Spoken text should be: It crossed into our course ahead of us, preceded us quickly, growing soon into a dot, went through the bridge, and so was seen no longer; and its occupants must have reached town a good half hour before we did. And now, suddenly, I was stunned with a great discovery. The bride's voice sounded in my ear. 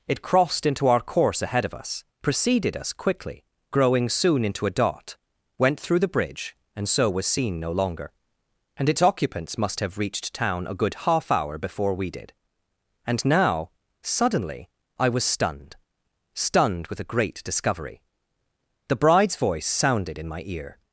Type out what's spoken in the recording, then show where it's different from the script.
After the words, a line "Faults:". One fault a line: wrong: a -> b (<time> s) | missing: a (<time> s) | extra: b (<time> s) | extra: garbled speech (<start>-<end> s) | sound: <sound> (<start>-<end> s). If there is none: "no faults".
It crossed into our course ahead of us, preceded us quickly, growing soon into a dot, went through the bridge, and so was seen no longer; and its occupants must have reached town a good half hour before we did. And now, suddenly, I was stunned stunned with a great discovery. The bride's voice sounded in my ear.
Faults:
extra: stunned (16.3 s)